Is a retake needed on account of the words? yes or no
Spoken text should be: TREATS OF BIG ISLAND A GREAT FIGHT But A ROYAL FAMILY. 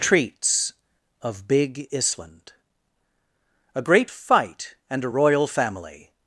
yes